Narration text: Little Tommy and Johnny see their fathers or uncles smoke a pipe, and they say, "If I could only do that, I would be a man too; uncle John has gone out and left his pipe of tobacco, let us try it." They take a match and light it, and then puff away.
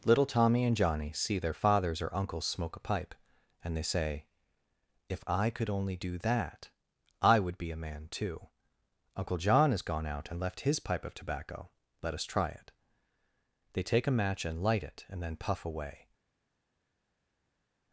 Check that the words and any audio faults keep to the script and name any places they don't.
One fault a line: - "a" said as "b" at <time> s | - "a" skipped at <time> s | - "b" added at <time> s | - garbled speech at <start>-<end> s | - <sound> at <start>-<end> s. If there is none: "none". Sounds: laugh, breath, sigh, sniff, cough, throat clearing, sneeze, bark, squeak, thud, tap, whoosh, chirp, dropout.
none